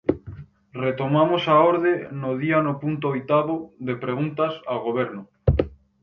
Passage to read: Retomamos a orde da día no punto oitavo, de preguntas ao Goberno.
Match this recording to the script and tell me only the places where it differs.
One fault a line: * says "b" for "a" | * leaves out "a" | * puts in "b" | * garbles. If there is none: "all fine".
* says "no" for "da"